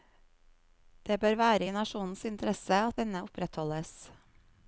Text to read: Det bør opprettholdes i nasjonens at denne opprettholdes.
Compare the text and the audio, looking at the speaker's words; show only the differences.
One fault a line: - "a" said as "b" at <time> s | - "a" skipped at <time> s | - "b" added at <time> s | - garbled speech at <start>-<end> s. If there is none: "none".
- "opprettholdes" said as "være" at 1.4 s
- "interesse" added at 2.3 s